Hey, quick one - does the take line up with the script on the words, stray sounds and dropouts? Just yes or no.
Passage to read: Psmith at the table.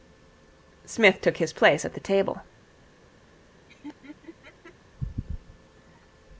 no